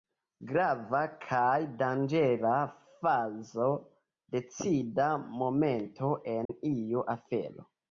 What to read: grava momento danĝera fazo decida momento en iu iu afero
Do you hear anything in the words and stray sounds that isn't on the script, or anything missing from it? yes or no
yes